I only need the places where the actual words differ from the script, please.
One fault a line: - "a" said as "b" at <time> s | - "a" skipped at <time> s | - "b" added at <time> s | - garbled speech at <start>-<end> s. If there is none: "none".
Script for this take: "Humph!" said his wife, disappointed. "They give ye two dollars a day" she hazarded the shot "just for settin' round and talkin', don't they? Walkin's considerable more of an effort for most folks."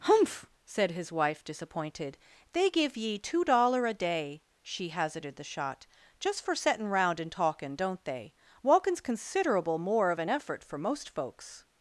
- "dollars" said as "dollar" at 3.4 s